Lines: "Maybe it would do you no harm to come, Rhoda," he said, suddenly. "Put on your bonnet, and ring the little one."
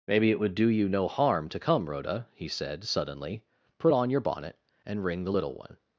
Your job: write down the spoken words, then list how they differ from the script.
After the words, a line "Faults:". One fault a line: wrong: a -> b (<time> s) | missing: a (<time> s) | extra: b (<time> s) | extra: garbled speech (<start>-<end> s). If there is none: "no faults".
"Maybe it would do you no harm to come, Rhoda," he said, suddenly. "Put on your bonnet, and ring the little one."
Faults:
no faults